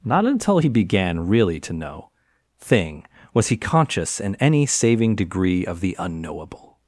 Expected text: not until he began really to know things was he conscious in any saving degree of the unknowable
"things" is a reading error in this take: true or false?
true